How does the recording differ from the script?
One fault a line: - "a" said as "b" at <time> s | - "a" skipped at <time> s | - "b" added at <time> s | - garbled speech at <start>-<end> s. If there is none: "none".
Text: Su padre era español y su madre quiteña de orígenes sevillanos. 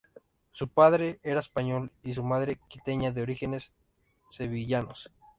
none